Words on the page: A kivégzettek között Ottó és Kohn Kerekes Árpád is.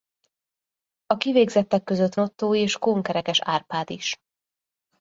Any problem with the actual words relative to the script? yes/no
no